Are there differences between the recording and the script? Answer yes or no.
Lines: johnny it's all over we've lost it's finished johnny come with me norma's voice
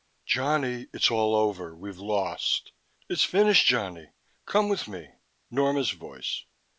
no